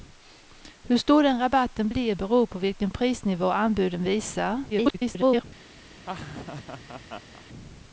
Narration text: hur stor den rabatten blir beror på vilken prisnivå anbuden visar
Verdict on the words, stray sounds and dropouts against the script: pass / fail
fail